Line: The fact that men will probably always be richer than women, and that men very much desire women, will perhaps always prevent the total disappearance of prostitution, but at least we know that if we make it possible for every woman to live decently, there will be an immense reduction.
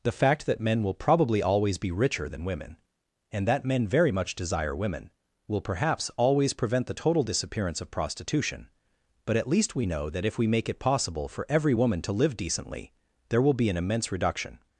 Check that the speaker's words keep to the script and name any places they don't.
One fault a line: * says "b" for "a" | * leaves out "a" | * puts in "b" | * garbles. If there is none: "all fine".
all fine